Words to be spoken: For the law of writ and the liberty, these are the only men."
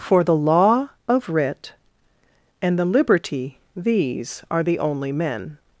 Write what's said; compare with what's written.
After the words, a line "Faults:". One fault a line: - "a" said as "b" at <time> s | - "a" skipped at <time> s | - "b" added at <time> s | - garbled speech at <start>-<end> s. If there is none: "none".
For the law of writ and the liberty, these are the only men."
Faults:
none